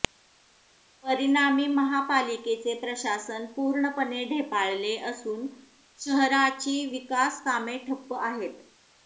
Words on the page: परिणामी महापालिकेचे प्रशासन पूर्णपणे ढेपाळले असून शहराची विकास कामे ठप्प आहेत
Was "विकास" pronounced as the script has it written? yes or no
yes